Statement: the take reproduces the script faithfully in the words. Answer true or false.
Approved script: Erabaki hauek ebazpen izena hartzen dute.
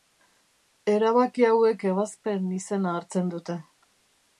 true